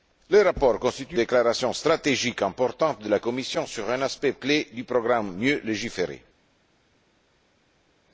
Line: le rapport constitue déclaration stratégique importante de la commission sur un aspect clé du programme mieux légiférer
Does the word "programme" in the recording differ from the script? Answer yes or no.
no